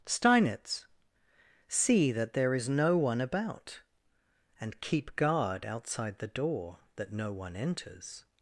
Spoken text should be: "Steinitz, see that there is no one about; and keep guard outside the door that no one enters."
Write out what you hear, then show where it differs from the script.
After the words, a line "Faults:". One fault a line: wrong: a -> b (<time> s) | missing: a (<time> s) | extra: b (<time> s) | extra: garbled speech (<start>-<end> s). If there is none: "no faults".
"Steinitz, see that there is no one about; and keep guard outside the door that no one enters."
Faults:
no faults